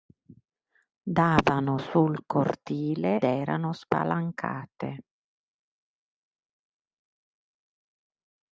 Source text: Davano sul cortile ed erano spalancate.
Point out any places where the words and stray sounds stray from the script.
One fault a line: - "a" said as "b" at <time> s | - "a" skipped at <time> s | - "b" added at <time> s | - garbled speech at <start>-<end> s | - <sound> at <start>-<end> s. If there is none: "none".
- "ed" skipped at 3.2 s